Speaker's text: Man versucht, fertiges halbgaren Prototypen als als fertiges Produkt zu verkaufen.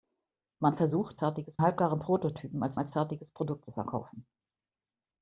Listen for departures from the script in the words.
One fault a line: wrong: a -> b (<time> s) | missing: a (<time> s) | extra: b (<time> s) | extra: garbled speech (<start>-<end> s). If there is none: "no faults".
no faults